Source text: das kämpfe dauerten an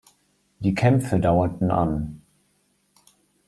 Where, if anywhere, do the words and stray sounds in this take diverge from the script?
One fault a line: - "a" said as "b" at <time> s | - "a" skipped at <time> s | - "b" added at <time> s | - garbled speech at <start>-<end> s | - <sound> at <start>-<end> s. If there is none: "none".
- "das" said as "die" at 0.6 s